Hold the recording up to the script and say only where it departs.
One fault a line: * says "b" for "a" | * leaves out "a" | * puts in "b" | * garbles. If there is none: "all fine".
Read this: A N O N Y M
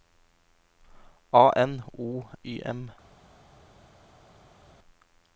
* leaves out "N"